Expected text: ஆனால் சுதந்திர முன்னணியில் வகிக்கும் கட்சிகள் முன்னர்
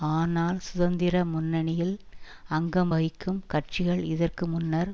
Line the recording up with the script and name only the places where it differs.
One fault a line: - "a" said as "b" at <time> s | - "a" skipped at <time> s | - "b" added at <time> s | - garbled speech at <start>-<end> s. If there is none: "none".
- "அங்கம்" added at 2.5 s
- "இதற்கு" added at 4.0 s